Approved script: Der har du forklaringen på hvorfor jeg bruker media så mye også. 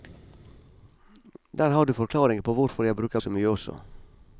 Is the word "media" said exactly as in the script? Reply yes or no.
no